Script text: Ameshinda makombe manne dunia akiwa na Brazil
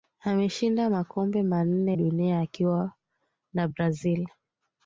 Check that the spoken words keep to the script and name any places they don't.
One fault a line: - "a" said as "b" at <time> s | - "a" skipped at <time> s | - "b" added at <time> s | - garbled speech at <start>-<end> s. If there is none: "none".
none